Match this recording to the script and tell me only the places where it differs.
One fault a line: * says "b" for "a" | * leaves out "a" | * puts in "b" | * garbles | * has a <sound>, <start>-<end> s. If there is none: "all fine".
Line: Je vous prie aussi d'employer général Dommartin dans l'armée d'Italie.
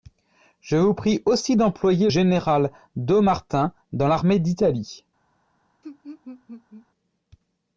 * has a laugh, 5.8-6.9 s